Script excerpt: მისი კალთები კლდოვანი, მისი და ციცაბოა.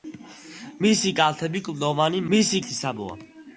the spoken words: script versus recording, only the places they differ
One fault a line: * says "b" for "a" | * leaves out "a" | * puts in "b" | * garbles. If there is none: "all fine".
all fine